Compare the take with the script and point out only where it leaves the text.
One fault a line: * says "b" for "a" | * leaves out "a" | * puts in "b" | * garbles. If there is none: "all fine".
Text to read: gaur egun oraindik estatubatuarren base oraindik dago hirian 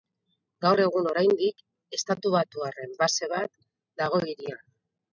* says "bat" for "oraindik"